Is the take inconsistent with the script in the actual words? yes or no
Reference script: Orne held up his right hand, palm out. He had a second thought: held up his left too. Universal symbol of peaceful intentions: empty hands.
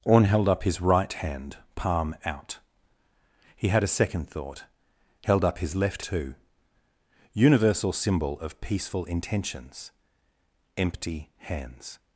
no